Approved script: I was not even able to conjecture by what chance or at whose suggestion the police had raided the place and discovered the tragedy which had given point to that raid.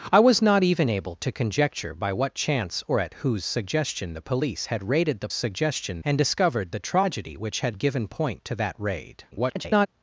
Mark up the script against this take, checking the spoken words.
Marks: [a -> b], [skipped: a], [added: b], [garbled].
I was not even able to conjecture by what chance or at whose suggestion the police had raided the [place -> suggestion] and discovered the tragedy which had given point to that raid. [garbled]